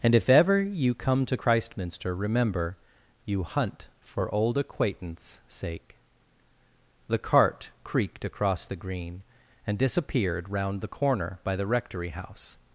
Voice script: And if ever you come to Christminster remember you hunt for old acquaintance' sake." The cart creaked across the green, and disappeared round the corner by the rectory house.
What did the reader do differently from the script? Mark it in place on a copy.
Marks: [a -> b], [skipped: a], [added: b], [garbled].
And if ever you come to Christminster remember you hunt for old acquaintance' sake." The cart creaked across the green, and disappeared round the corner by the rectory house.